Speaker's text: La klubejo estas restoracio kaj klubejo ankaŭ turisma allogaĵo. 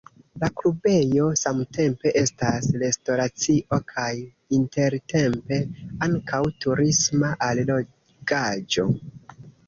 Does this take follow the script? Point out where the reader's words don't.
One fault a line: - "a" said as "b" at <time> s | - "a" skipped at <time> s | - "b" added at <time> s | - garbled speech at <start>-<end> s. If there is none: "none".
- "samtempe" added at 1.4 s
- "klubejo" said as "intertempe" at 4.6 s